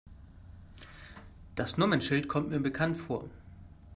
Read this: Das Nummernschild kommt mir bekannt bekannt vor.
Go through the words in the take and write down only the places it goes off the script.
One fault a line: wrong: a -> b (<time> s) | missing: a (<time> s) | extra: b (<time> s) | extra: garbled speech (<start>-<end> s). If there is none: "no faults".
missing: bekannt (3.0 s)